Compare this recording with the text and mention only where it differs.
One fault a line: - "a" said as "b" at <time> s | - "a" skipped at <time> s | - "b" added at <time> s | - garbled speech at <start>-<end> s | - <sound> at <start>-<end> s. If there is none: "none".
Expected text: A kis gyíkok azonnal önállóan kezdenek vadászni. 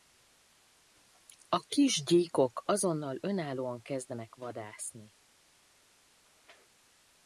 none